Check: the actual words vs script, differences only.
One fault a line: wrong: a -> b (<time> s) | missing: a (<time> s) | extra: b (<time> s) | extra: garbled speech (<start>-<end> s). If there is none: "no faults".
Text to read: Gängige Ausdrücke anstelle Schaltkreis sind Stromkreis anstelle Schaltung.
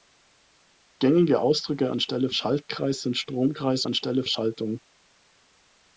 no faults